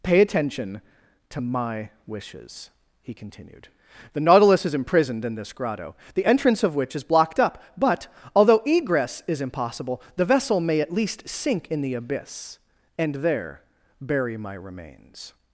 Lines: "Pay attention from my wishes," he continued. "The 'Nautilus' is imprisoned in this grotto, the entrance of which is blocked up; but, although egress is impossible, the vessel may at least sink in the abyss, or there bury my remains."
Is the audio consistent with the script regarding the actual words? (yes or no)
no